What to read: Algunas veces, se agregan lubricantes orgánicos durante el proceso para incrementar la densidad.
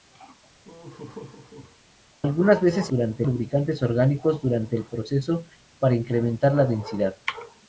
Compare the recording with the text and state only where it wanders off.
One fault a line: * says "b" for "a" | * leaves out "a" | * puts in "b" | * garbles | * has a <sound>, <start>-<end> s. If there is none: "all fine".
* has a laugh, 0.6-1.8 s
* says "durante" for "agregan"